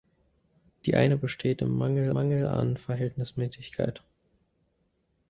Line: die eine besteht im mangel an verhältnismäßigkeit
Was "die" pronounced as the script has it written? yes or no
yes